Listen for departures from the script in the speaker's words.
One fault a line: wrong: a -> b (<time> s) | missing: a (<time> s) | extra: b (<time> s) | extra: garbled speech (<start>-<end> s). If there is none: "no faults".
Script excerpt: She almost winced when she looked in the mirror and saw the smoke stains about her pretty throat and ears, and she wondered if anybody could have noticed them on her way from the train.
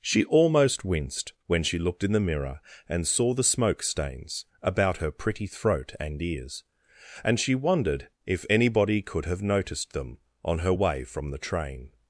no faults